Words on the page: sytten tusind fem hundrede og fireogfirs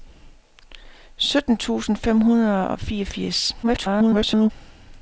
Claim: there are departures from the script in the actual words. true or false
true